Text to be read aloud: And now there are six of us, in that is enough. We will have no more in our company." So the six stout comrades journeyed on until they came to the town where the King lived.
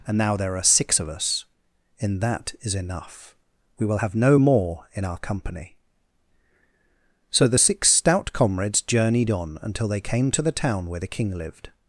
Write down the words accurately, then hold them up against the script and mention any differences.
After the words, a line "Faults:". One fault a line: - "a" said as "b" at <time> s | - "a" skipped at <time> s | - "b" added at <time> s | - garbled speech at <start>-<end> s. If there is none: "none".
And now there are six of us, in that is enough. We will have no more in our company." So the six stout comrades journeyed on until they came to the town where the King lived.
Faults:
none